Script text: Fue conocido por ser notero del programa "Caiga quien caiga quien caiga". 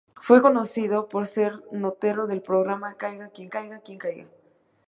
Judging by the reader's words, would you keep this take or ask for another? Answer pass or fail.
pass